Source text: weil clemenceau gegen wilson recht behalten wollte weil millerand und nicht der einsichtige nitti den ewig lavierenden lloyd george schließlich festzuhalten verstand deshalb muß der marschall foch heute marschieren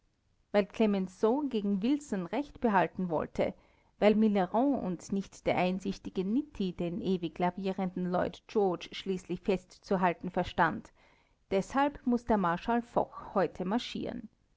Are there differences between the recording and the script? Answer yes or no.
no